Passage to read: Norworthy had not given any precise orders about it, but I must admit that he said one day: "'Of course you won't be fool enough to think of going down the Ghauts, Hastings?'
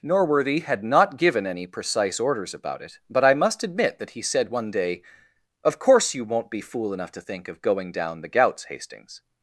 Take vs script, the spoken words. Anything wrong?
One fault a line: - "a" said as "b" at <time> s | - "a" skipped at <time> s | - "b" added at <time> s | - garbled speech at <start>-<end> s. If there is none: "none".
none